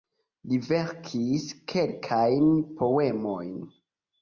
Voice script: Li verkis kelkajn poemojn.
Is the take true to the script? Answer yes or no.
yes